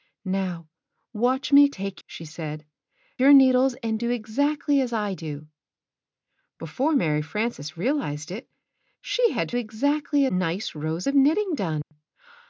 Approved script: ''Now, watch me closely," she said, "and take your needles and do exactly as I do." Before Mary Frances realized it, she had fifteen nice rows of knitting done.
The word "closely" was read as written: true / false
false